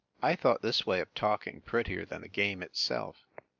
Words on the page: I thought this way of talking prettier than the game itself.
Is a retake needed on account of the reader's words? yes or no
no